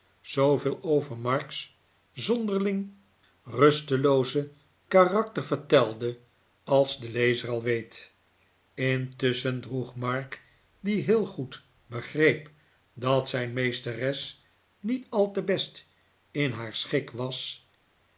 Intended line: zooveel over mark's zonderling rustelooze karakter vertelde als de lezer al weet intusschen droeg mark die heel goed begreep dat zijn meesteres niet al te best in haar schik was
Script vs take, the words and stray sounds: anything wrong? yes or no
no